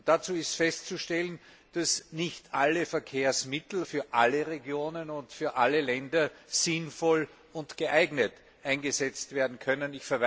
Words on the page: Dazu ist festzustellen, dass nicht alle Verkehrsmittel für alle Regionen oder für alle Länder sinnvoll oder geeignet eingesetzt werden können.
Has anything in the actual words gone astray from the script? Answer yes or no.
yes